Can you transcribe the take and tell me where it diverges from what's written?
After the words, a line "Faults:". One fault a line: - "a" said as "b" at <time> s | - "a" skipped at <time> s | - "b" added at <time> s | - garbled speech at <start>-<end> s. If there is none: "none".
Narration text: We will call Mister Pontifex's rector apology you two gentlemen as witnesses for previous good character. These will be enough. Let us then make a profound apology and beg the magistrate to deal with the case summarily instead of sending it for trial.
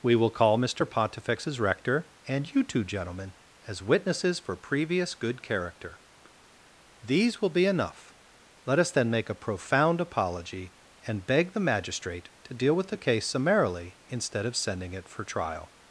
We will call Mister Pontifex's rector and you two gentlemen as witnesses for previous good character. These will be enough. Let us then make a profound apology and beg the magistrate to deal with the case summarily instead of sending it for trial.
Faults:
- "apology" said as "and" at 2.3 s